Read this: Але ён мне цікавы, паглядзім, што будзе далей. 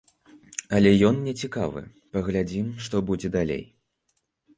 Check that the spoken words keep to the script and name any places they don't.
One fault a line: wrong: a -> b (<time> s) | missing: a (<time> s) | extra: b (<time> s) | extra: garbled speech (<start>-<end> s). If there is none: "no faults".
no faults